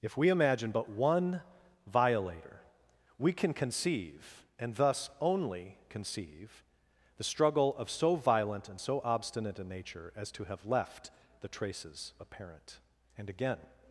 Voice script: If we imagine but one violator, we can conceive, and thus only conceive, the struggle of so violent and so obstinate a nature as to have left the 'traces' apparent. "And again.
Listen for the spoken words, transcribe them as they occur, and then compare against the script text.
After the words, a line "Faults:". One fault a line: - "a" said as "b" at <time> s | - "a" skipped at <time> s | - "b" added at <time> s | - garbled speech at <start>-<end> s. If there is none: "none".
If we imagine but one violator, we can conceive, and thus only conceive, the struggle of so violent and so obstinate a nature as to have left the 'traces' apparent. "And again.
Faults:
none